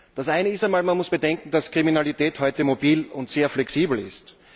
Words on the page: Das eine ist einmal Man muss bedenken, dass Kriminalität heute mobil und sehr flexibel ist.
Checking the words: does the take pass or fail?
pass